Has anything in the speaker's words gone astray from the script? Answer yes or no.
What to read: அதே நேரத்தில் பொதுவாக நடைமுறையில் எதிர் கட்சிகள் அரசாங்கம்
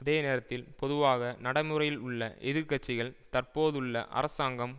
yes